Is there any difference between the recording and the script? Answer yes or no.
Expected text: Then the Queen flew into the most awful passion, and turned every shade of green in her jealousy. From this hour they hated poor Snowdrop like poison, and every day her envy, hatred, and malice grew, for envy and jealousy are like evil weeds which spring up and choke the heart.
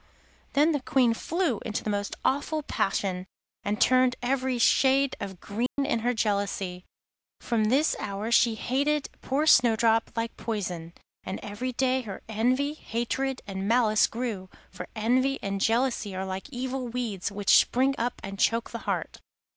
yes